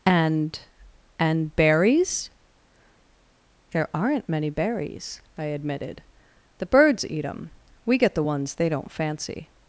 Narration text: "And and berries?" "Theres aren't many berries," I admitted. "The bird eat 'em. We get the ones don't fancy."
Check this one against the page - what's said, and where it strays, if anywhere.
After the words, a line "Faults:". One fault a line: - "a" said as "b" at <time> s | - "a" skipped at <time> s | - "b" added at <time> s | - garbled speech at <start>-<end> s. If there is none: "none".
"And and berries?" "There aren't many berries," I admitted. "The birds eat 'em. We get the ones they don't fancy."
Faults:
- "Theres" said as "There" at 3.7 s
- "bird" said as "birds" at 6.7 s
- "they" added at 8.6 s